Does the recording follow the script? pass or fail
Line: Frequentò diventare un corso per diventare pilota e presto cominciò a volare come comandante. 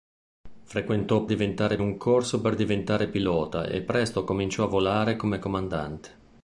pass